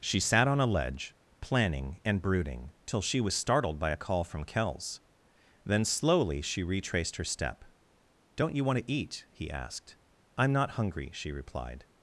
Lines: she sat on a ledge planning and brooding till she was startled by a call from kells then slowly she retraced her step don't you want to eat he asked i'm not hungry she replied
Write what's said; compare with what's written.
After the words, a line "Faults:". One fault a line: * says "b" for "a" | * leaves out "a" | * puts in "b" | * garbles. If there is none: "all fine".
she sat on a ledge planning and brooding till she was startled by a call from kells then slowly she retraced her step don't you want to eat he asked i'm not hungry she replied
Faults:
all fine